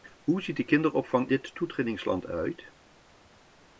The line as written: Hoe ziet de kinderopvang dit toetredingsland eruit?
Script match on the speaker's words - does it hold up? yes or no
yes